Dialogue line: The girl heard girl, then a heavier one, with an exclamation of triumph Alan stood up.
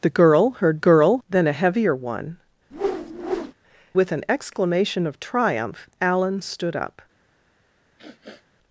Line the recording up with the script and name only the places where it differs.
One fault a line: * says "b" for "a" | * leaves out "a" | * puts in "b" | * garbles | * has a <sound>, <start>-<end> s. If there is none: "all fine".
* has a whoosh, 2.7-3.5 s
* has a sniff, 8.0-8.5 s